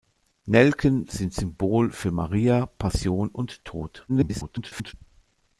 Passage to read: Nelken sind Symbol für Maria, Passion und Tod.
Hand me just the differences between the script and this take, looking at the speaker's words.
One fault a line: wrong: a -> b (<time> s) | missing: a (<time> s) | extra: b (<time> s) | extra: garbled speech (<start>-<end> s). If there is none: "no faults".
extra: garbled speech (4.1-4.9 s)